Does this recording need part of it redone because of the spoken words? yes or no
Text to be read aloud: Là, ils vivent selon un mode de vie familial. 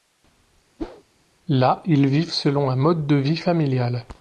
no